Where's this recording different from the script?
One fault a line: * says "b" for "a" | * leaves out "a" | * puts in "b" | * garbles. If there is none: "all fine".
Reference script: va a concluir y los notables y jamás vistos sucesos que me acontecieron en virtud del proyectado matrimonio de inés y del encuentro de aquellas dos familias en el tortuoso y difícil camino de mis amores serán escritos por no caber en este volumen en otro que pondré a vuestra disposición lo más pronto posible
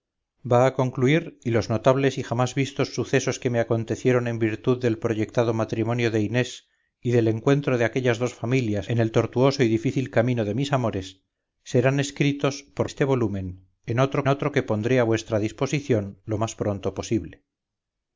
* leaves out "no caber en"
* puts in "otro"